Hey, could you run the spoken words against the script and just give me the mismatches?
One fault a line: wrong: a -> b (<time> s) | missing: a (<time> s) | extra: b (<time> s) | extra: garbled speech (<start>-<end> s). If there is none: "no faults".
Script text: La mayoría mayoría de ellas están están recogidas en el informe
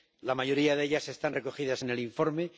missing: mayoría (0.8 s)
missing: están (1.3 s)